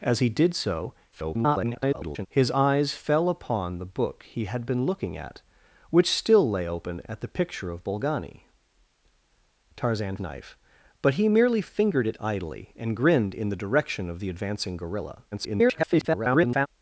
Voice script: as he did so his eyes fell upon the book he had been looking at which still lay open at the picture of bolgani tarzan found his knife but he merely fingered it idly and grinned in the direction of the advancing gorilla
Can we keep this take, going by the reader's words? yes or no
no